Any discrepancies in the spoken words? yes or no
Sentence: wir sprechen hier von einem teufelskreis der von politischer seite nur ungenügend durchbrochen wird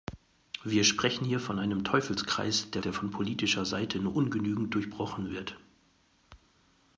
yes